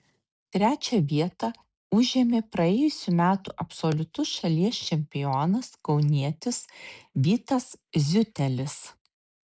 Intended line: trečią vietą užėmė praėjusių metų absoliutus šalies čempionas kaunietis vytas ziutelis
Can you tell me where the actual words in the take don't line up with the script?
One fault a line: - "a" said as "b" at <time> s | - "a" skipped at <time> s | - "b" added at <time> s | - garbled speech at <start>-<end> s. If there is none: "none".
none